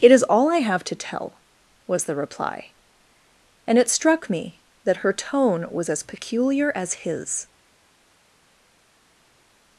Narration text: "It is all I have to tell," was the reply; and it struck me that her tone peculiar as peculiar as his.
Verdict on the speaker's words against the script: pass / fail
fail